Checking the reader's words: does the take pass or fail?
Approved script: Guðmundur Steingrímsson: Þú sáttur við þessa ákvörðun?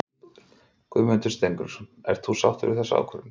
fail